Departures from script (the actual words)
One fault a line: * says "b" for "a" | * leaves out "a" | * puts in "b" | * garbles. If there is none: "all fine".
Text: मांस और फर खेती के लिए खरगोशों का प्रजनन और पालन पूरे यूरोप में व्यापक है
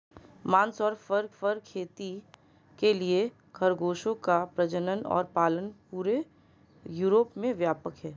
* puts in "फर"